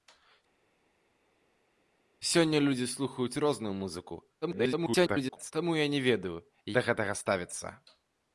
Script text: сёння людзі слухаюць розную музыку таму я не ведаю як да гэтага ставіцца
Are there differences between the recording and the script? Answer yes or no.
yes